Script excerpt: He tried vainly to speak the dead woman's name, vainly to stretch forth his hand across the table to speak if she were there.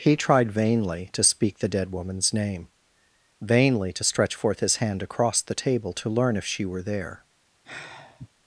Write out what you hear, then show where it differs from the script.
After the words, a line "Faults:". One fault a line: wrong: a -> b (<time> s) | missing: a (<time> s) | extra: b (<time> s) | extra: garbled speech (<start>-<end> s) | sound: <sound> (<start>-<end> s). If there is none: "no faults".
He tried vainly to speak the dead woman's name, vainly to stretch forth his hand across the table to learn if she were there.
Faults:
wrong: speak -> learn (6.1 s)
sound: sigh (7.6-8.3 s)